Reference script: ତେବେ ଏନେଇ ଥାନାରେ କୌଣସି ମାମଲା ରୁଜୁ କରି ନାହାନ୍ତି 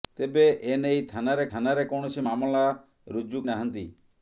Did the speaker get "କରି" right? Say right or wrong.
wrong